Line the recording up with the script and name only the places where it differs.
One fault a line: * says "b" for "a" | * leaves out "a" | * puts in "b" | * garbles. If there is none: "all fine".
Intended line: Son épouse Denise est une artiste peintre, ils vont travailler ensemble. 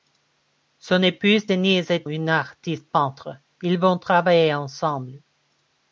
all fine